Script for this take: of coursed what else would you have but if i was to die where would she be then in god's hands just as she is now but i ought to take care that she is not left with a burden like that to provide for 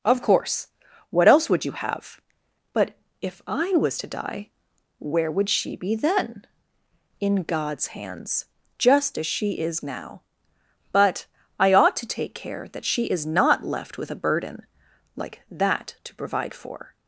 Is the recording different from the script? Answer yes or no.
yes